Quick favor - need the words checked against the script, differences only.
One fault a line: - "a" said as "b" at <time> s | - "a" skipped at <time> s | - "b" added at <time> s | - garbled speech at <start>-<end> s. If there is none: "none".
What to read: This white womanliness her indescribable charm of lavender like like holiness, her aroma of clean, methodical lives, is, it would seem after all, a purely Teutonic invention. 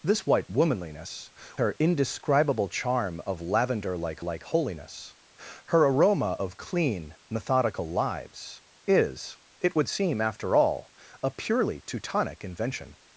none